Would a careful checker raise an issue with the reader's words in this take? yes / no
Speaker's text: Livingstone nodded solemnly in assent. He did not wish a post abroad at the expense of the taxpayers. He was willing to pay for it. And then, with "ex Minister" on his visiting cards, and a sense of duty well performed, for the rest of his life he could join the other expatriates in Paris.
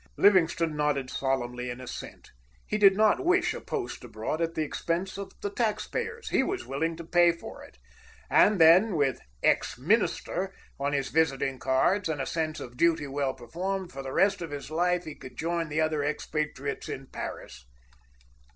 no